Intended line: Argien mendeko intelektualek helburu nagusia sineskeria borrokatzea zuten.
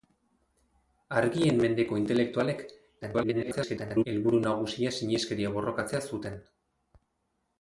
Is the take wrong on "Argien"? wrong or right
right